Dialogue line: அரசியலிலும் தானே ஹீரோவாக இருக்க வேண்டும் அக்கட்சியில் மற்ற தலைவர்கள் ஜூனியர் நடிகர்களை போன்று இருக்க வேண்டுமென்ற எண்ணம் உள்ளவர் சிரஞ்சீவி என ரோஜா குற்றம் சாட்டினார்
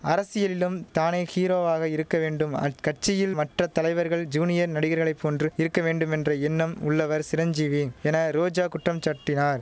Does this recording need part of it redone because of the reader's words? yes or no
no